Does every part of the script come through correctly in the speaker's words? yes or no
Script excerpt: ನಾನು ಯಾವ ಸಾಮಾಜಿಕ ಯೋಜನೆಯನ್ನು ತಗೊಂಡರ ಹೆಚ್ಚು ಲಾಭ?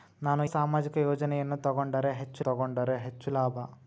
no